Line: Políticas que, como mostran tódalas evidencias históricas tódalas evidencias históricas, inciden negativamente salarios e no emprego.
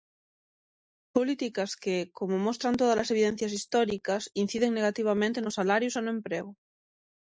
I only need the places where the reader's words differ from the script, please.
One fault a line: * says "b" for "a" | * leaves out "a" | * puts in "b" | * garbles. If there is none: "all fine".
* leaves out "tódalas evidencias históricas"
* puts in "nos"